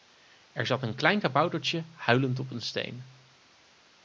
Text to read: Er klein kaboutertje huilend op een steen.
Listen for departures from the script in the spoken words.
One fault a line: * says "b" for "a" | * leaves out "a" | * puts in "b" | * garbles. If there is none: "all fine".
* puts in "zat een"